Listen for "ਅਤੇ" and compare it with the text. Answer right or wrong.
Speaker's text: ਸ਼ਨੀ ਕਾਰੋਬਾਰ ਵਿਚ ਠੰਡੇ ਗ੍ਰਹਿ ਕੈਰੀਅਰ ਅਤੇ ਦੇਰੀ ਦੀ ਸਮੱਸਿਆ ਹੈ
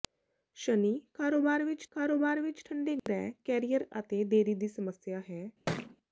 right